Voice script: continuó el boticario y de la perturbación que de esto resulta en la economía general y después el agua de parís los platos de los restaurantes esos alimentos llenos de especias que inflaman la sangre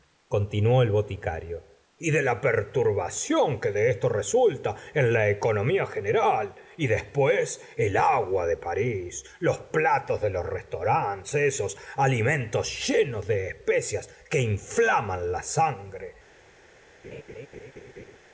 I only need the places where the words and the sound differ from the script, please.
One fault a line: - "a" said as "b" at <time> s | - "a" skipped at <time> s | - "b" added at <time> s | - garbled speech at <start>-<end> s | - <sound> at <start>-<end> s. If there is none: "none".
- laugh at 17.0-18.2 s